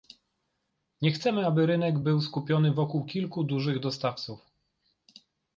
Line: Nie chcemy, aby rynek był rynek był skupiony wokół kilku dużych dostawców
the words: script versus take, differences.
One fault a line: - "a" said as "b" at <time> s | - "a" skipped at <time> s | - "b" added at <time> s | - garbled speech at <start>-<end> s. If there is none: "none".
- "rynek był" skipped at 2.2 s